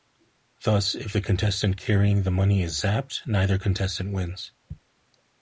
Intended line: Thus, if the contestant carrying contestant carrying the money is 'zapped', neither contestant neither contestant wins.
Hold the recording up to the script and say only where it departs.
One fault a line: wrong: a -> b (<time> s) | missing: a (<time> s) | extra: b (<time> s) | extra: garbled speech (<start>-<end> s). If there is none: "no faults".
missing: contestant carrying (2.2 s)
missing: neither contestant (4.1 s)